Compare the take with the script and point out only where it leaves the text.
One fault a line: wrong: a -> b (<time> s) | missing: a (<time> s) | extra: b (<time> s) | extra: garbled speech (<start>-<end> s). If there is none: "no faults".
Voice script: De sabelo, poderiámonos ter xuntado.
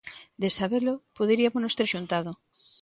no faults